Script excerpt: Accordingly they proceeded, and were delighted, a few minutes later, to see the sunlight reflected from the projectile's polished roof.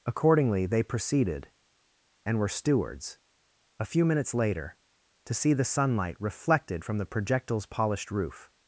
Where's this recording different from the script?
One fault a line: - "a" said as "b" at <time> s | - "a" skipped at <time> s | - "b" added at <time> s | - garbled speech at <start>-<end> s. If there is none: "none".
- "delighted" said as "stewards" at 2.5 s